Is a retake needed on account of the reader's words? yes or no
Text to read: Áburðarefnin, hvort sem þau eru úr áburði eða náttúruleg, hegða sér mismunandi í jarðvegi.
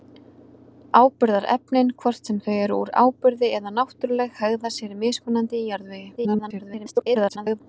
yes